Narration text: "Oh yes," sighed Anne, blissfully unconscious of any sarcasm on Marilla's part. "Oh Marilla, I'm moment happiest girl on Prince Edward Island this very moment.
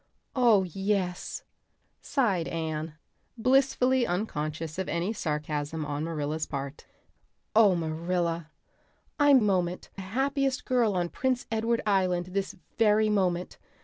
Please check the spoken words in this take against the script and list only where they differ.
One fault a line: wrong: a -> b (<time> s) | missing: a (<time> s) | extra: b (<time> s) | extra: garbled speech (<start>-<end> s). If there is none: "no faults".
no faults